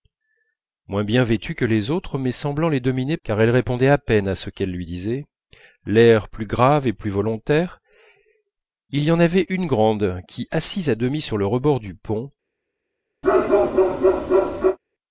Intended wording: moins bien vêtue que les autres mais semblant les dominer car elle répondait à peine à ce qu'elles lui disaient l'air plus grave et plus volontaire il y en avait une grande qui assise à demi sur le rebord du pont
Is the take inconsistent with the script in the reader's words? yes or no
no